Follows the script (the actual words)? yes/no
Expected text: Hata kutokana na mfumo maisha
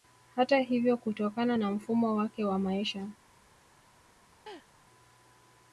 no